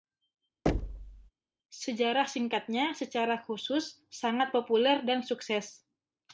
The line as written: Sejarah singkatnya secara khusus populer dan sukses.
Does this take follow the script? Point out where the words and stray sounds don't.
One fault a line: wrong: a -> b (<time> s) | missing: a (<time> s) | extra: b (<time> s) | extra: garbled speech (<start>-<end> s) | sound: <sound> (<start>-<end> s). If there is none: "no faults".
sound: thud (0.7-1.3 s)
extra: sangat (4.1 s)